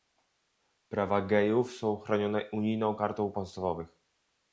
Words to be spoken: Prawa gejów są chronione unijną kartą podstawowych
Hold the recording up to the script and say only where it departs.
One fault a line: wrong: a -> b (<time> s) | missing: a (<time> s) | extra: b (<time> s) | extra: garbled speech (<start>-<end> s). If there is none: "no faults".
no faults